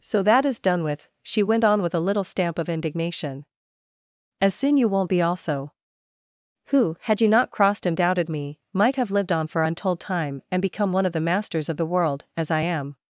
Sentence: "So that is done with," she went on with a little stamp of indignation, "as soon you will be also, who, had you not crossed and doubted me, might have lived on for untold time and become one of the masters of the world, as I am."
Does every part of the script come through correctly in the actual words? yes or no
no